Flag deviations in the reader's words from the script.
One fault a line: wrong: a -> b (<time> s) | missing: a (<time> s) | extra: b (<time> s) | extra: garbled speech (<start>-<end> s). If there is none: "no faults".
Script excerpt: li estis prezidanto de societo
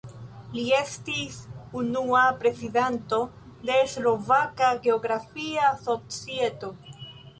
extra: unua (1.8 s)
extra: slovaka geografia (3.9 s)